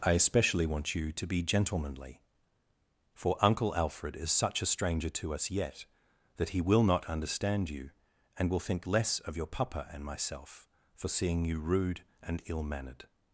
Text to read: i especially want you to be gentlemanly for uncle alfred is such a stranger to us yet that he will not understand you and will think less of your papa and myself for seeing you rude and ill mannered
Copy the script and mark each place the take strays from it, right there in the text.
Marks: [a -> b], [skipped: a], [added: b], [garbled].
i especially want you to be gentlemanly for uncle alfred is such a stranger to us yet that he will not understand you and will think less of your papa and myself for seeing you rude and ill mannered